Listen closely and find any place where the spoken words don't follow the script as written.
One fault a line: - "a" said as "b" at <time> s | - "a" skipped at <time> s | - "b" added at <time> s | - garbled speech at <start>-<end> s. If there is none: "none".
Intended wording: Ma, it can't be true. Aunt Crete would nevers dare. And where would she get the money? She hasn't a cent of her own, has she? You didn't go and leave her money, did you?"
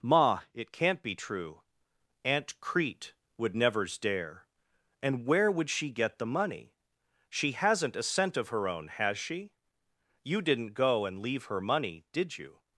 none